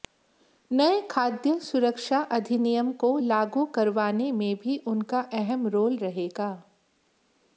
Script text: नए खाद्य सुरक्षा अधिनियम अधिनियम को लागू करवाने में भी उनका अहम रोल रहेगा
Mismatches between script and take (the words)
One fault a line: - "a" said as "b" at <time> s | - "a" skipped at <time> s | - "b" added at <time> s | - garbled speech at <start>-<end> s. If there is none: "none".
- "अधिनियम" skipped at 2.9 s